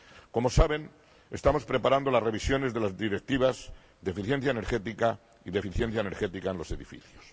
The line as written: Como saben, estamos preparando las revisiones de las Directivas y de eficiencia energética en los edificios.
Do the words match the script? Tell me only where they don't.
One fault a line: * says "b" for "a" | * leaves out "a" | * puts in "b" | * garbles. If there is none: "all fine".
* puts in "de eficiencia energética"